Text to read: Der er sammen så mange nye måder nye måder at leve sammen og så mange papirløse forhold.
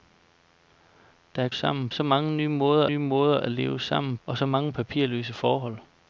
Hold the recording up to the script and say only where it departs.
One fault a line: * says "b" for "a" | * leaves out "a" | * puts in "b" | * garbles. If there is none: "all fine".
all fine